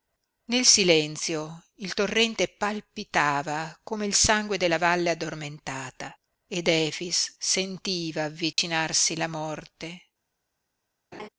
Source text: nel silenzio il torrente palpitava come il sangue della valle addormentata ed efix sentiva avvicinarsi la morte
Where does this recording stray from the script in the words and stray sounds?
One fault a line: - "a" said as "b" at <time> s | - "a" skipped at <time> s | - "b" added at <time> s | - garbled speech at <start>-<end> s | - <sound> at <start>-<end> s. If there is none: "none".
- dropout at 8.5-8.6 s
- laugh at 11.1-11.3 s